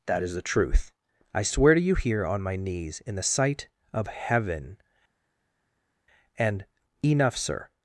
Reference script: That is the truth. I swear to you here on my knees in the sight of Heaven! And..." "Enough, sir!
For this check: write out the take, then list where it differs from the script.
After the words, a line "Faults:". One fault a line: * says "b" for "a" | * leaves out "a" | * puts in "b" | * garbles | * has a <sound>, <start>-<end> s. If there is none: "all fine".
That is the truth. I swear to you here on my knees in the sight of Heaven! And..." "Enough, sir!
Faults:
all fine